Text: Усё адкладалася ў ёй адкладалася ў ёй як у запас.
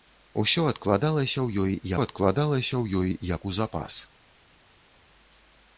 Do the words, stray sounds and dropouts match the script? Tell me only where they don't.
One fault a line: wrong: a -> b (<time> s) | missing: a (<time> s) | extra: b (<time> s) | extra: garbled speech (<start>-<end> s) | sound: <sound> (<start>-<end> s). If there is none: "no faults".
no faults